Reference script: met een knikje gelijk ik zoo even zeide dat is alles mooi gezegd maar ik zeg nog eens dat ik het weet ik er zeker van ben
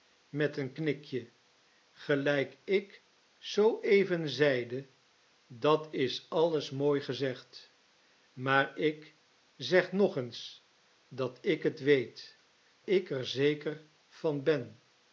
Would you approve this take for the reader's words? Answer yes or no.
yes